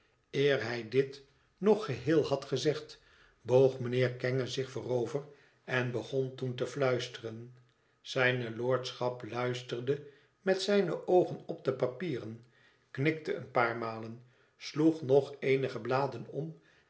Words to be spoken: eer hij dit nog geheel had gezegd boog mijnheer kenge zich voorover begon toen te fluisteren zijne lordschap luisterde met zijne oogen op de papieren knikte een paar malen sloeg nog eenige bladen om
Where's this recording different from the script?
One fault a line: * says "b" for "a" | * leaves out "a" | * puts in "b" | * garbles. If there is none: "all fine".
* puts in "en"